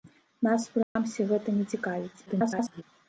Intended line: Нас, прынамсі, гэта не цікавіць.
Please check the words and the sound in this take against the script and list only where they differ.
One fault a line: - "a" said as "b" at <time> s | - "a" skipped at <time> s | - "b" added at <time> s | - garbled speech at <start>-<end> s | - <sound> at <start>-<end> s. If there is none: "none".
- dropout at 0.8-1.0 s
- garbled speech at 2.3-2.8 s